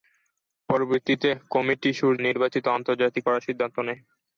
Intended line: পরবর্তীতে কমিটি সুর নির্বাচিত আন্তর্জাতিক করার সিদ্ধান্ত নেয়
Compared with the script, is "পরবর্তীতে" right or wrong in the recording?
right